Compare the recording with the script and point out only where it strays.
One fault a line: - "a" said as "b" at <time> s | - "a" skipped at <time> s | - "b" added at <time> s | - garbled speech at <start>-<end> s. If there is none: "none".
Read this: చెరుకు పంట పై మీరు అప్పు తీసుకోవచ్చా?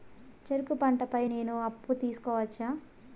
- "మీరు" said as "నేను" at 1.2 s